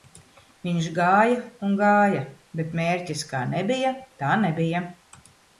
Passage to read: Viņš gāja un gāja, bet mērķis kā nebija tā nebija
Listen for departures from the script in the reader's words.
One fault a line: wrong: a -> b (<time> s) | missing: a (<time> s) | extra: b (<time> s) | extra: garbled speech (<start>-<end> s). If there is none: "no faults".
no faults